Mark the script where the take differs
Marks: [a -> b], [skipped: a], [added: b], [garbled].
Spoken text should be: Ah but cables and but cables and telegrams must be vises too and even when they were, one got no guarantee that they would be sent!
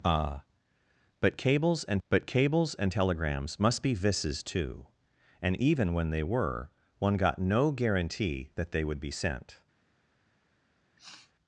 Ah but cables and but cables and telegrams must be vises too and even when they were, one got no guarantee that they would be sent!